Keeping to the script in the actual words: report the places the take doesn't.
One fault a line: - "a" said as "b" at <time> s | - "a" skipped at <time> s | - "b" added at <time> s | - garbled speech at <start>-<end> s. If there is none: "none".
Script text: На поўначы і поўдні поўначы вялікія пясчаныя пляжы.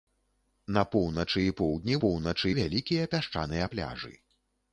none